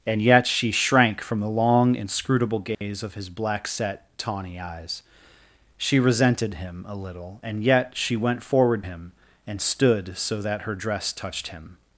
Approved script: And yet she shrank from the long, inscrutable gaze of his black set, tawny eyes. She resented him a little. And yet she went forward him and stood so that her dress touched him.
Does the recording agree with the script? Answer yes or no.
yes